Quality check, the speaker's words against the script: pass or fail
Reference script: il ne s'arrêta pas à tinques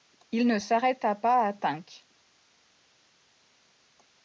pass